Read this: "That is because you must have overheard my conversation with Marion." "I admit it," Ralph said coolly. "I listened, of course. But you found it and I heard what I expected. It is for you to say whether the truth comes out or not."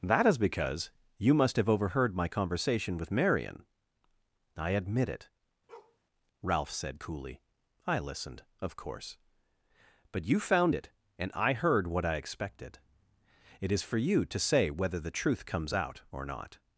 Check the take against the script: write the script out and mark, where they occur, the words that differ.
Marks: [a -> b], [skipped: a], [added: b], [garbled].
"That is because you must have overheard my conversation with Marion." "I admit it," Ralph said coolly. "I listened, of course. But you found it and I heard what I expected. It is for you to say whether the truth comes out or not."